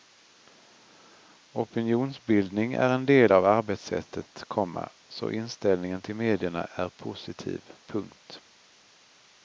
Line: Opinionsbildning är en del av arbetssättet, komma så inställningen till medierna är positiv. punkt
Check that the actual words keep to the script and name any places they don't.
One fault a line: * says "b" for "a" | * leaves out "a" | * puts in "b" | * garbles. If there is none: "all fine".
all fine